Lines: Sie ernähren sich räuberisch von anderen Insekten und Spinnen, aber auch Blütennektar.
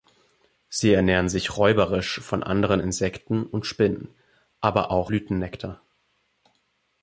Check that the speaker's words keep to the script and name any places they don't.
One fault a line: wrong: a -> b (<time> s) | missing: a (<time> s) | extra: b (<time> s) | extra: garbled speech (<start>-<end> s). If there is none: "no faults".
no faults